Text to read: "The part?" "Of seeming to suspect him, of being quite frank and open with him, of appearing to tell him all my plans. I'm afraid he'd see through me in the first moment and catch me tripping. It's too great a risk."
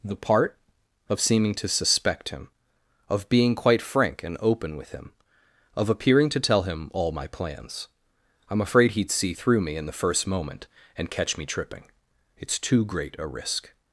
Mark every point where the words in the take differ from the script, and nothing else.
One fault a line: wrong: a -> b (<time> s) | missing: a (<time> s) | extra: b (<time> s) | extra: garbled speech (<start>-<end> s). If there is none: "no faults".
no faults